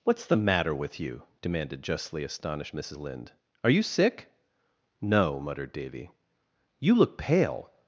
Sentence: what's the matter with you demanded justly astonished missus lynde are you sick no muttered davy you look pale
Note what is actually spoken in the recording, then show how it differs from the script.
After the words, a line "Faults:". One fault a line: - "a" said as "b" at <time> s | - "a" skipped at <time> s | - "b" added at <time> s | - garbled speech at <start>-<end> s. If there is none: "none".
what's the matter with you demanded justly astonished missus lynde are you sick no muttered davy you look pale
Faults:
none